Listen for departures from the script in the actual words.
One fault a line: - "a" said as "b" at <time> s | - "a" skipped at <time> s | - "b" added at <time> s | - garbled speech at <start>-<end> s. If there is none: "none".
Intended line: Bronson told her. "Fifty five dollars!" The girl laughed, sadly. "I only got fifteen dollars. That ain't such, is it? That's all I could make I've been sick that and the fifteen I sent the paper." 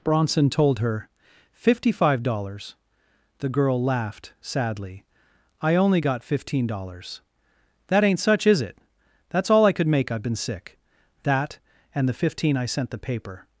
none